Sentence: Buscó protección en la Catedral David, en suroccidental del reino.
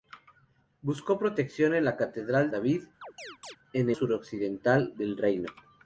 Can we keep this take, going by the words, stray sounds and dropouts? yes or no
no